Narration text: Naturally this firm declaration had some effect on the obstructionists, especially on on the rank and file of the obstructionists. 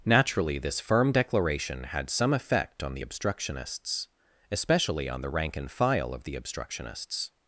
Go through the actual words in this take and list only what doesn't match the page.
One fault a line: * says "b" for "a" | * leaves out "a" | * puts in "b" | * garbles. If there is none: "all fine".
* leaves out "on"